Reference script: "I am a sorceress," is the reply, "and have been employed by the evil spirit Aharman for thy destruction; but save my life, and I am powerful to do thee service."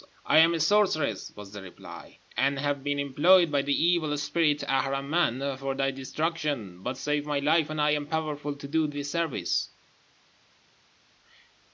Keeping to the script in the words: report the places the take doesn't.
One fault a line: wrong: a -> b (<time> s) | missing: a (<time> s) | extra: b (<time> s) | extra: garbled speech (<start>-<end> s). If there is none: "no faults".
wrong: is -> was (1.4 s)